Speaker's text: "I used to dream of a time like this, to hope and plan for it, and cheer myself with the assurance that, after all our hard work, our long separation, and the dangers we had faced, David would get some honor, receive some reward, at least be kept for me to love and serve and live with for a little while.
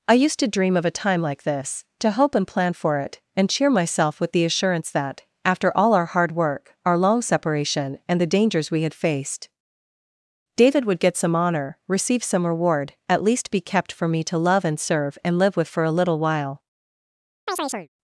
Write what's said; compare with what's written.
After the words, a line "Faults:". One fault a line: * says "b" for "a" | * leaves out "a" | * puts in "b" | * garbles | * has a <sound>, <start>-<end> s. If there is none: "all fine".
"I used to dream of a time like this, to hope and plan for it, and cheer myself with the assurance that, after all our hard work, our long separation, and the dangers we had faced, David would get some honor, receive some reward, at least be kept for me to love and serve and live with for a little while.
Faults:
* has a chirp, 17.5-17.9 s